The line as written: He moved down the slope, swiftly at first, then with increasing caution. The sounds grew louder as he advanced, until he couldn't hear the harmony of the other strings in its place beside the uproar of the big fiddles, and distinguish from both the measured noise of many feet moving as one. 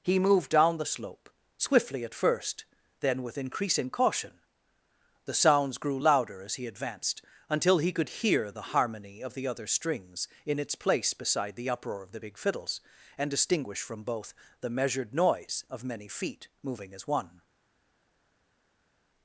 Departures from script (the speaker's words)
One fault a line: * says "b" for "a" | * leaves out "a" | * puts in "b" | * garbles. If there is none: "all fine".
* says "could" for "couldn't"